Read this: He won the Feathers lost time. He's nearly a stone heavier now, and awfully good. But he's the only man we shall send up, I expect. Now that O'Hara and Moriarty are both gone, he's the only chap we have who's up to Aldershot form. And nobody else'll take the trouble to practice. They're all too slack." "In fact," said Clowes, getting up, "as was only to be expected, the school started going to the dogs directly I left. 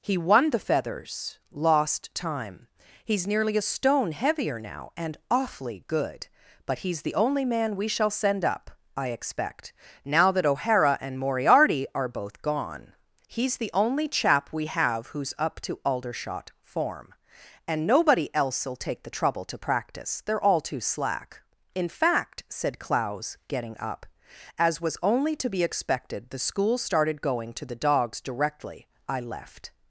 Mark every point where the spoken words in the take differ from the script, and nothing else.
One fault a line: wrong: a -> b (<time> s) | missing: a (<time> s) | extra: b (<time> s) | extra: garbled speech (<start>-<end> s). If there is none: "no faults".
no faults